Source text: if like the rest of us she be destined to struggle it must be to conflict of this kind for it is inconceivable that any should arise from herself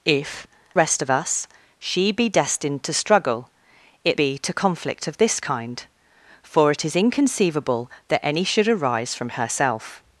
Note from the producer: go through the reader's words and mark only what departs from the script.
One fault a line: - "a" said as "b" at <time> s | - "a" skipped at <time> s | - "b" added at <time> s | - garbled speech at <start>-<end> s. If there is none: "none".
- "like the" skipped at 0.5 s
- "must" skipped at 4.2 s